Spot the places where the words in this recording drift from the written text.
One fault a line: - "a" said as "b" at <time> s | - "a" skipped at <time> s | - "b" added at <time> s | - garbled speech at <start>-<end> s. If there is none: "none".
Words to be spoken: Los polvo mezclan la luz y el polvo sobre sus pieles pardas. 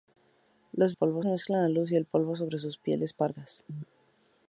none